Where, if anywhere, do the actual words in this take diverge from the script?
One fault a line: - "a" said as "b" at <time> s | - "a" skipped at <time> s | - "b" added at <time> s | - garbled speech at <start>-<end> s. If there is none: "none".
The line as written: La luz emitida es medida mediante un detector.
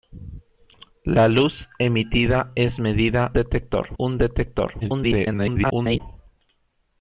- "mediante" said as "detector" at 3.3 s
- garbled speech at 4.8-6.0 s